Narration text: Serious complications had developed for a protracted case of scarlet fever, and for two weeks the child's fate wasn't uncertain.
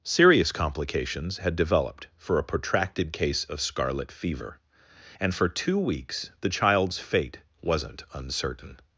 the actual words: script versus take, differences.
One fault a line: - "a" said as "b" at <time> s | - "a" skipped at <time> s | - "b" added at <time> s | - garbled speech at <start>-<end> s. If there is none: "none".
none